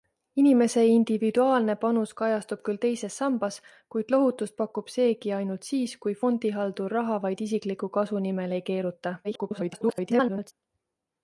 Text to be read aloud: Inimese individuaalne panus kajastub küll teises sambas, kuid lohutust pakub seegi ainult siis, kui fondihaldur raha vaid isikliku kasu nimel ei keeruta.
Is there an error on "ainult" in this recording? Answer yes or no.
no